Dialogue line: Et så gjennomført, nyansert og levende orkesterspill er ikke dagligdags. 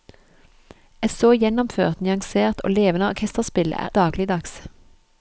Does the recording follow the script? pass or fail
fail